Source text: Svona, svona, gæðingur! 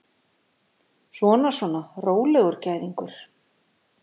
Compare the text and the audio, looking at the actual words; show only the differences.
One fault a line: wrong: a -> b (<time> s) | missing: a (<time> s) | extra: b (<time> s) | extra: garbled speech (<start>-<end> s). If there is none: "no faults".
extra: rólegur (2.1 s)